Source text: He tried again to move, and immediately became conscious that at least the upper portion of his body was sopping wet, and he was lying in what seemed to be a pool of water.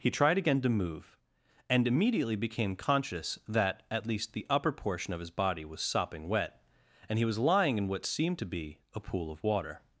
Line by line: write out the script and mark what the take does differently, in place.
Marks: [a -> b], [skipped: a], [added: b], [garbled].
He tried again to move, and immediately became conscious that at least the upper portion of his body was sopping wet, and he was lying in what seemed to be a pool of water.